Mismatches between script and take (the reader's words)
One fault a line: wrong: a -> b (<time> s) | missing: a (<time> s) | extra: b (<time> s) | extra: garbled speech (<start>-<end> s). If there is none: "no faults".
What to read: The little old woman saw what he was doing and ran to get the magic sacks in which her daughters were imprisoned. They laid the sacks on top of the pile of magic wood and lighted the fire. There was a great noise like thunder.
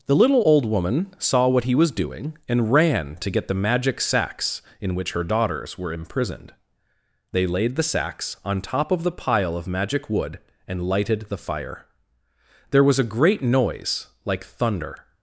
no faults